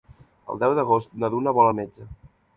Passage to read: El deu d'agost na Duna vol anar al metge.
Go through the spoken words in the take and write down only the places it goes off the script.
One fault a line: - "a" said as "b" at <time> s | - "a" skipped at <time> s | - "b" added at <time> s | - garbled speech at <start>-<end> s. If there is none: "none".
- "anar" skipped at 1.7 s